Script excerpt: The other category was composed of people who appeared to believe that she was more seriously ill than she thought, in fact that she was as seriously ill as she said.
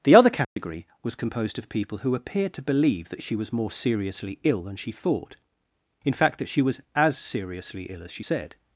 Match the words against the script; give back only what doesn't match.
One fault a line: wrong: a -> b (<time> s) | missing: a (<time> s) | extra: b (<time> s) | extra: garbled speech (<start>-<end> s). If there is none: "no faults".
no faults